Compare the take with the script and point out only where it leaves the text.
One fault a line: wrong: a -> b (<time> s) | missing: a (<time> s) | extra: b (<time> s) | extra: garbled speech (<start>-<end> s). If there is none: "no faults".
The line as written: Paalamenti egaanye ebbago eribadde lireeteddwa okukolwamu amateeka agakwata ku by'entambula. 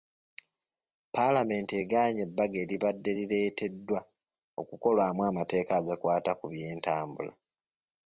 no faults